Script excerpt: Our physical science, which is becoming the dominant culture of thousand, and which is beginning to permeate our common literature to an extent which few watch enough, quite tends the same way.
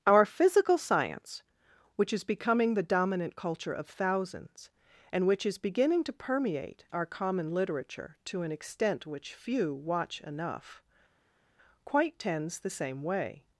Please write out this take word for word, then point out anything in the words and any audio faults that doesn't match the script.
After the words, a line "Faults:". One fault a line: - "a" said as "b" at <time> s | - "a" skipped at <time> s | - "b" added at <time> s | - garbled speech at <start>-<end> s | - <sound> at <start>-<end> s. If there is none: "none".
Our physical science, which is becoming the dominant culture of thousands, and which is beginning to permeate our common literature to an extent which few watch enough, quite tends the same way.
Faults:
- "thousand" said as "thousands" at 3.8 s